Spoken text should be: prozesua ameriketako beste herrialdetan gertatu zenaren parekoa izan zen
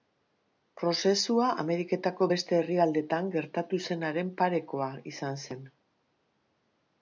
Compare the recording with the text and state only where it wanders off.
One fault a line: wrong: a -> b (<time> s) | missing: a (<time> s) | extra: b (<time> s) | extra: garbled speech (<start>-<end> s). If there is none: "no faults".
no faults